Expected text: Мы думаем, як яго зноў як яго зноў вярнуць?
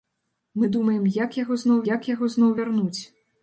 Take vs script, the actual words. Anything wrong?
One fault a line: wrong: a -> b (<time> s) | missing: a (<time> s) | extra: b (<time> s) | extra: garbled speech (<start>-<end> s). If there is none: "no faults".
no faults